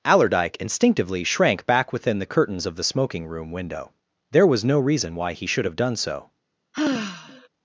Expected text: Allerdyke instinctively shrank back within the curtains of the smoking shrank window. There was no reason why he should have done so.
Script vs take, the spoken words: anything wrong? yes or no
yes